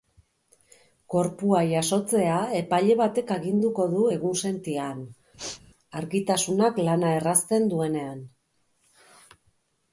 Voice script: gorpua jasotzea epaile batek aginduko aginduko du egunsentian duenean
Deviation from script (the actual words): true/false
true